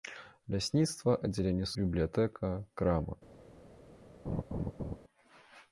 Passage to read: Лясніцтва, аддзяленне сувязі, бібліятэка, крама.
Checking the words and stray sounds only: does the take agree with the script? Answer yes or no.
no